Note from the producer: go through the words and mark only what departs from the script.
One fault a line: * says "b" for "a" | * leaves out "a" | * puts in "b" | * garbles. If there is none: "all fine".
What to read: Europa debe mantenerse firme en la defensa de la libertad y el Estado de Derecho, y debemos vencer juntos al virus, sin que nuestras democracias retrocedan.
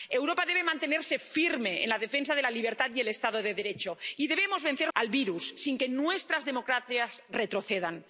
* leaves out "juntos"